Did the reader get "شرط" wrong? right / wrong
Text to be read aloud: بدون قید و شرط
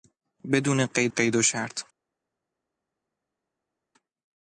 right